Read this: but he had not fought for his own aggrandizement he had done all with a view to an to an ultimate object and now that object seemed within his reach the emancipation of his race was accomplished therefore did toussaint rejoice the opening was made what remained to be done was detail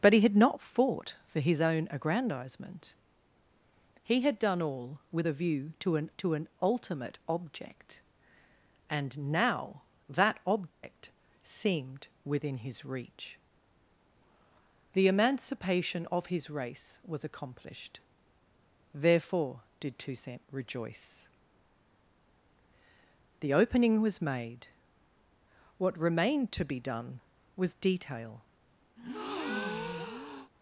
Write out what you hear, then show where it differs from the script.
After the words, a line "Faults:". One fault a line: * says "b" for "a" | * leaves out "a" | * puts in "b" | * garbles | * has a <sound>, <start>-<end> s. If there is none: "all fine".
but he had not fought for his own aggrandizement he had done all with a view to an to an ultimate object and now that object seemed within his reach the emancipation of his race was accomplished therefore did toussaint rejoice the opening was made what remained to be done was detail
Faults:
* has a dropout, 10.7-10.8 s
* has a breath, 29.0-30.5 s